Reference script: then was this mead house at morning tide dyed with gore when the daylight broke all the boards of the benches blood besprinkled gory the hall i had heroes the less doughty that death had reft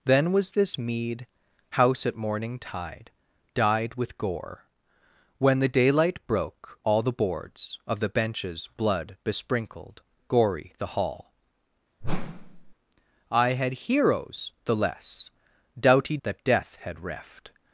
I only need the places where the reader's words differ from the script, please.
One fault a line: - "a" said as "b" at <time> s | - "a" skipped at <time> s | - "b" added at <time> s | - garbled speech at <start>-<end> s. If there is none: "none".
none